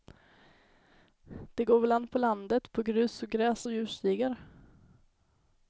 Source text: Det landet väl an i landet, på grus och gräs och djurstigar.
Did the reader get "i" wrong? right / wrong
wrong